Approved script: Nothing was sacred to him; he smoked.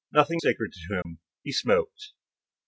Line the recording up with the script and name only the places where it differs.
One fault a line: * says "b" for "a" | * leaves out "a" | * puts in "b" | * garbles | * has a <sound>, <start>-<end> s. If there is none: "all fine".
* leaves out "was"
* has a dropout, 1.0-1.0 s